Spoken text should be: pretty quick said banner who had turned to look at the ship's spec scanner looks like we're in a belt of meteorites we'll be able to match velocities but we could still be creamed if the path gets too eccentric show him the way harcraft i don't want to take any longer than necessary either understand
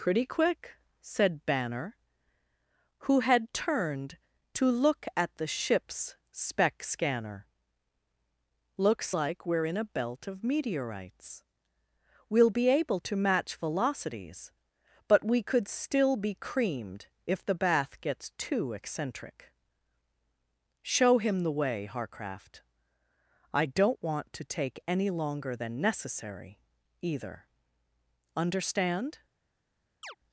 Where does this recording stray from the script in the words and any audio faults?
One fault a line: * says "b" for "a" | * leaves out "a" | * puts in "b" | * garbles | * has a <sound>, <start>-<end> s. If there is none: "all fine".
* says "bath" for "path"
* has a chirp, 30.0-30.2 s